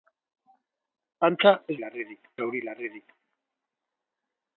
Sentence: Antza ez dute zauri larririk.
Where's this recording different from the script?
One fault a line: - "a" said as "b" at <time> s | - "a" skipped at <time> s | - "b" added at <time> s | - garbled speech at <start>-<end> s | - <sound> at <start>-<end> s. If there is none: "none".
- "dute" said as "larririk" at 1.8 s